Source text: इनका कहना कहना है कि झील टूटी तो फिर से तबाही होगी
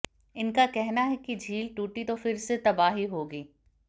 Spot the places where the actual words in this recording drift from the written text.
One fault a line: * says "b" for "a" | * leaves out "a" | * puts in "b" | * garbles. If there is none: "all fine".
* leaves out "कहना"